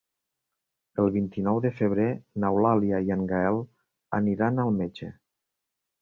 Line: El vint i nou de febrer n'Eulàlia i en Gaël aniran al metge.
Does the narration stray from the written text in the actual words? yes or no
no